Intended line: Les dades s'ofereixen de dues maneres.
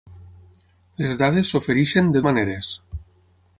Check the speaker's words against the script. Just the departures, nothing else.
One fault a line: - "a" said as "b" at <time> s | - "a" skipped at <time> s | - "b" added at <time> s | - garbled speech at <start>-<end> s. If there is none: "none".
- "dues" skipped at 2.2 s